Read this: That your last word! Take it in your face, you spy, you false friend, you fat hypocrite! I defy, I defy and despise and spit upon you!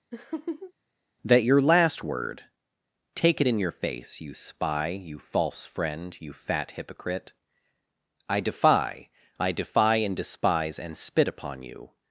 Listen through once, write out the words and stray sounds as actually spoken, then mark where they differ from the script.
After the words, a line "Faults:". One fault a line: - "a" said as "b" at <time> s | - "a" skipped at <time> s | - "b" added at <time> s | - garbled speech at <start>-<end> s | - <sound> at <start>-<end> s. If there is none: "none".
That your last word! Take it in your face, you spy, you false friend, you fat hypocrite! I defy, I defy and despise and spit upon you!
Faults:
- laugh at 0.1-0.7 s